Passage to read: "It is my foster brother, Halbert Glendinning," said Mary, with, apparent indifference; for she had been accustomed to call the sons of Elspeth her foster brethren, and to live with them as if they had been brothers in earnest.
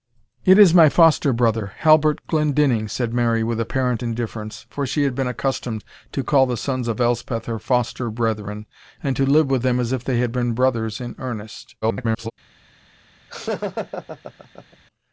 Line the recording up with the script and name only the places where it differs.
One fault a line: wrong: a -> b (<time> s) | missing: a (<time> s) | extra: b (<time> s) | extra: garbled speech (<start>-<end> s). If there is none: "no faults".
extra: garbled speech (11.8-12.3 s)